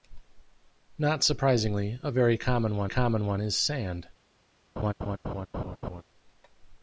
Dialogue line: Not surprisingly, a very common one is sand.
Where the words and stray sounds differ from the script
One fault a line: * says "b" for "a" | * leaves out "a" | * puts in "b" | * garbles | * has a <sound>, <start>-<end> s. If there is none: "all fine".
* puts in "common one"
* has a laugh, 4.8-6.0 s